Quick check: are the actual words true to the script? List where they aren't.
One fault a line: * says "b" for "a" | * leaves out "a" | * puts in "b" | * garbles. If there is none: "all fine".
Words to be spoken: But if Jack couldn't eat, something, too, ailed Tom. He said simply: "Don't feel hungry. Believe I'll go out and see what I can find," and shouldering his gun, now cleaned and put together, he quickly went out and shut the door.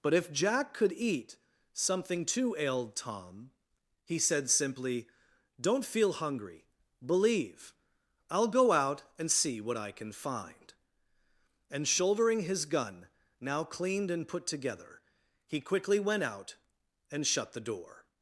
* says "could" for "couldn't"